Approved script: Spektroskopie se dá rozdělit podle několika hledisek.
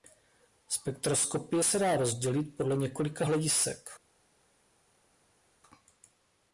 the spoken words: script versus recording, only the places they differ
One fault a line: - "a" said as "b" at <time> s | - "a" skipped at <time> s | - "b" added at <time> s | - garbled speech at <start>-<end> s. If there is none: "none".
none